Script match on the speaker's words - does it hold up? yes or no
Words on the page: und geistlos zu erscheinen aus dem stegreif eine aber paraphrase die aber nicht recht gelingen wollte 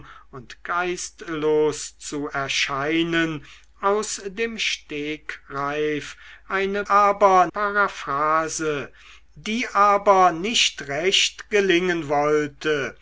yes